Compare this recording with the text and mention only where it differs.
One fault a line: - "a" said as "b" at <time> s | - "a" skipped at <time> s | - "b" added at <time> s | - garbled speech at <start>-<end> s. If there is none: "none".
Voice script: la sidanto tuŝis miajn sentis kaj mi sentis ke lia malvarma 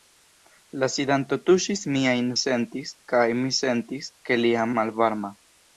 none